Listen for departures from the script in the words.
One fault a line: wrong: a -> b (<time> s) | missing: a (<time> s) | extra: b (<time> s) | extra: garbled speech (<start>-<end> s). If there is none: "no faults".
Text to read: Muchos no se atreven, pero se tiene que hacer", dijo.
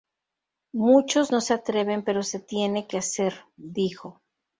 no faults